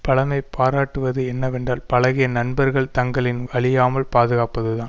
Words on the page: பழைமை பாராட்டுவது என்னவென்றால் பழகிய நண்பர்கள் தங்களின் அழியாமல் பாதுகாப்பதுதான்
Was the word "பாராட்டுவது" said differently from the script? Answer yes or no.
no